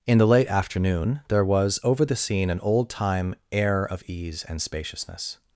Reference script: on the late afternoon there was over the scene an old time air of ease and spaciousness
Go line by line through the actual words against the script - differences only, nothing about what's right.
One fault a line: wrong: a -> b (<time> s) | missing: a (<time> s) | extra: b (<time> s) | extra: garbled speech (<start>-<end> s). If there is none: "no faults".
wrong: on -> in (0.1 s)